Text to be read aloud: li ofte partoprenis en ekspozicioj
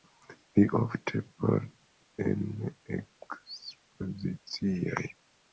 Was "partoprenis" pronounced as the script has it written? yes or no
no